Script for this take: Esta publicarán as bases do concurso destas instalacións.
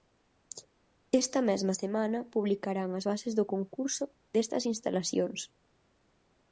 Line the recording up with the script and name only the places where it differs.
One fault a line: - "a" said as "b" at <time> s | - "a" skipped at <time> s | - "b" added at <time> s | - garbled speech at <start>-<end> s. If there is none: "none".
- "mesma semana" added at 1.5 s